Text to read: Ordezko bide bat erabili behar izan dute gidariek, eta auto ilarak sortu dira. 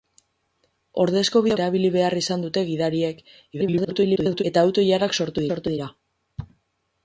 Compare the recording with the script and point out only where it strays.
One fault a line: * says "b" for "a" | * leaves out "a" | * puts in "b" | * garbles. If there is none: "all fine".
* leaves out "bat"
* garbles
* puts in "sortu"